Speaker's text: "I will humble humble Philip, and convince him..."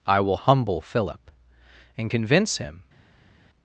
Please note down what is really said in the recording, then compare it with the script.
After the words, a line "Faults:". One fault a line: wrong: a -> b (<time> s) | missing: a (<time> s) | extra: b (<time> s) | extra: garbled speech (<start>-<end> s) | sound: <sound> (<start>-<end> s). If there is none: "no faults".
"I will humble Philip, and convince him..."
Faults:
missing: humble (0.8 s)